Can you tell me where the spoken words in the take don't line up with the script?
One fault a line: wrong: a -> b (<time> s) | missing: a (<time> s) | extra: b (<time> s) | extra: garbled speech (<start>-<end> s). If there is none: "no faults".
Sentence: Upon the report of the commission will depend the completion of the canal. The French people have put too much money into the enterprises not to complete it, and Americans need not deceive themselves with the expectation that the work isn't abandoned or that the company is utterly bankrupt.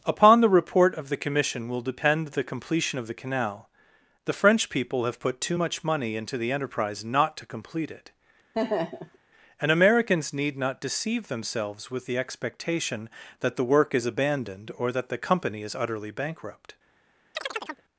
wrong: enterprises -> enterprise (6.5 s)
wrong: isn't -> is (13.9 s)